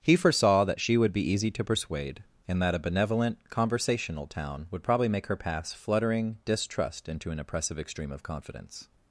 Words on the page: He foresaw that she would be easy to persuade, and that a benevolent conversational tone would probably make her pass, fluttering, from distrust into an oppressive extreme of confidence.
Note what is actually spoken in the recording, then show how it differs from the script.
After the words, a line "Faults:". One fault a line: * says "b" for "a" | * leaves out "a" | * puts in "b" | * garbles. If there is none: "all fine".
He foresaw that she would be easy to persuade, and that a benevolent conversational town would probably make her pass, fluttering, distrust into an oppressive extreme of confidence.
Faults:
* says "town" for "tone"
* leaves out "from"